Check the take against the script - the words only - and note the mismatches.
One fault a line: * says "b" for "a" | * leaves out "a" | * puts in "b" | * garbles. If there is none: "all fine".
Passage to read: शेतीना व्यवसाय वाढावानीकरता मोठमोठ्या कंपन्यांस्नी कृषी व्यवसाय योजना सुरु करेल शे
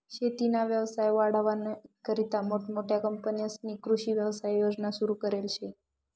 all fine